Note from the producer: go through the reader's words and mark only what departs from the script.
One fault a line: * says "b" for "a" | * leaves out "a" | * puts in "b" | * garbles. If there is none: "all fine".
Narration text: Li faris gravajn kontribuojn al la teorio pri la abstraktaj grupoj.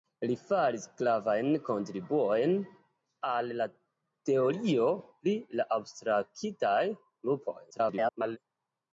* garbles